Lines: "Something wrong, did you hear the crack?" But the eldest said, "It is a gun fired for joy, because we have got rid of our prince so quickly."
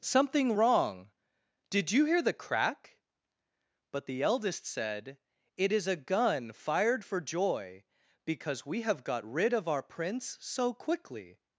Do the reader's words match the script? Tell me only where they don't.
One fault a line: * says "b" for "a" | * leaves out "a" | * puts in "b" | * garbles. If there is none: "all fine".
all fine